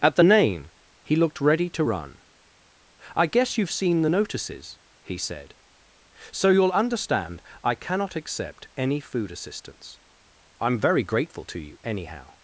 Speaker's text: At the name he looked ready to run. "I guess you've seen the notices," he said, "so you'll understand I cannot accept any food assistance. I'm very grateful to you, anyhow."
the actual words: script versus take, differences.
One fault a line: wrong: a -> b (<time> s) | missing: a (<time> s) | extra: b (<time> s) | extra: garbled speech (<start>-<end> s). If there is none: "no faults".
no faults